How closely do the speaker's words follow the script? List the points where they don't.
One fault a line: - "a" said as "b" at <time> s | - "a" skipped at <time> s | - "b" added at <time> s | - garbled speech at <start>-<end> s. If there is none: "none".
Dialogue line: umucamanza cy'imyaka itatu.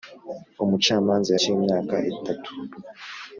none